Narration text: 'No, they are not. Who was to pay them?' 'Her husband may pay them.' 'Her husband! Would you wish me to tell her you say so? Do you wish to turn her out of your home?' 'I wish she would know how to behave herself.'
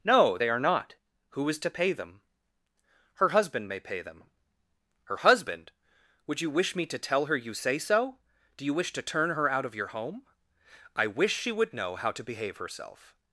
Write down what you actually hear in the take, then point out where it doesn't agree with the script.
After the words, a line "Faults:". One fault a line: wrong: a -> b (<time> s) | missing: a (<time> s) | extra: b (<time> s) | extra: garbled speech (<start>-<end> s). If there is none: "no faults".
'No, they are not. Who is to pay them?' 'Her husband may pay them.' 'Her husband! Would you wish me to tell her you say so? Do you wish to turn her out of your home?' 'I wish she would know how to behave herself.'
Faults:
wrong: was -> is (1.5 s)